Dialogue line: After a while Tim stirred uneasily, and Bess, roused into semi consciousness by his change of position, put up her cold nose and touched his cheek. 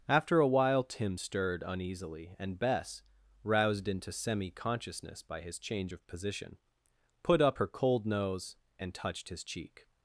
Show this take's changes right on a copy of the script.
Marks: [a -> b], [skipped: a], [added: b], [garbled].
After a while Tim stirred uneasily, and Bess, roused into semi consciousness by his change of position, put up her cold nose and touched his cheek.